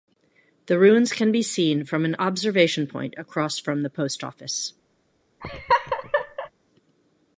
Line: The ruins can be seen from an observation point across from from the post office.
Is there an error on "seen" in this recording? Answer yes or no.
no